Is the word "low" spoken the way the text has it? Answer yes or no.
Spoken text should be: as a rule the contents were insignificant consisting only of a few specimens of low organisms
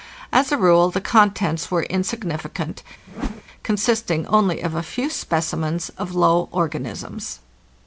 yes